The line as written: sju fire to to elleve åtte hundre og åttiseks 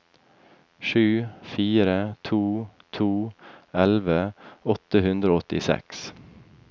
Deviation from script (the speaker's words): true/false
false